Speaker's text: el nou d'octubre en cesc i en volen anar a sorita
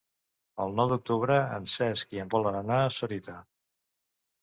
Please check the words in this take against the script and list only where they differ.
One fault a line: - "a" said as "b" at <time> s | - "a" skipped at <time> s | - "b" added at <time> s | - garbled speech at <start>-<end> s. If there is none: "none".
none